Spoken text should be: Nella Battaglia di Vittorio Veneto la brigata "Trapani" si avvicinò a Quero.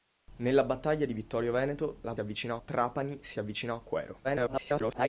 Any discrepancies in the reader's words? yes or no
yes